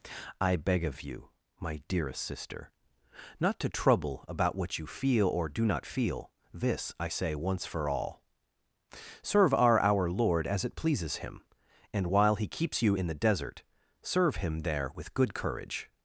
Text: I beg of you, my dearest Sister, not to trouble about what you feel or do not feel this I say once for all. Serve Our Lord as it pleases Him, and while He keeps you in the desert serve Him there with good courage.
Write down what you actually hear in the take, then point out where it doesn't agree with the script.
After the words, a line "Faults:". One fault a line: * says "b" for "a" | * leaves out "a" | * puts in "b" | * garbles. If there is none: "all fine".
I beg of you, my dearest Sister, not to trouble about what you feel or do not feel this I say once for all. Serve Our Our Lord as it pleases Him, and while He keeps you in the desert serve Him there with good courage.
Faults:
* puts in "Our"